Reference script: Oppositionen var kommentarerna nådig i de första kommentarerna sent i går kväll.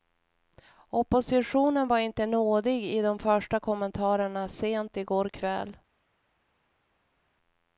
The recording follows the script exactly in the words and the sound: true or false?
false